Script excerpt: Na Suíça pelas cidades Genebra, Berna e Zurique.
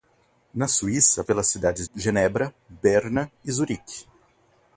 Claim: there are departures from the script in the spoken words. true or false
false